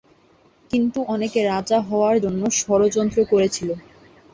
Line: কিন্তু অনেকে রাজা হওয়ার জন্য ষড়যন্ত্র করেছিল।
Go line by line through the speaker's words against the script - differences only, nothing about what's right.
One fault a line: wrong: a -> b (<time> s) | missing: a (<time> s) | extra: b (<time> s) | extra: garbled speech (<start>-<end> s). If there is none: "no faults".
no faults